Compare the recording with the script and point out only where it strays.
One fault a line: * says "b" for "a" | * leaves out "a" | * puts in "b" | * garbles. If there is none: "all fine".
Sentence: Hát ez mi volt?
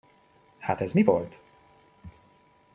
all fine